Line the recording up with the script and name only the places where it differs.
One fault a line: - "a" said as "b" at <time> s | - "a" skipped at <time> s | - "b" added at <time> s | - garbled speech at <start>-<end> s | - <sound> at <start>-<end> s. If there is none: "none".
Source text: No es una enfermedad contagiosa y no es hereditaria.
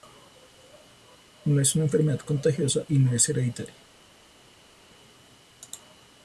none